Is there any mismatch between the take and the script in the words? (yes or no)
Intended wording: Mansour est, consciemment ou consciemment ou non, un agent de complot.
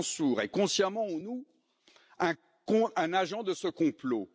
yes